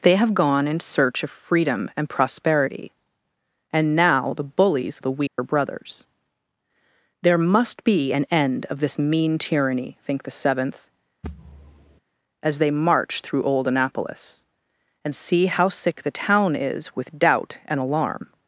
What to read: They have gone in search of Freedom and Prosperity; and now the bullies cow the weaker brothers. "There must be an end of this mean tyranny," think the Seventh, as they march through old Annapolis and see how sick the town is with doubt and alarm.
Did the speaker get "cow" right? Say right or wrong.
wrong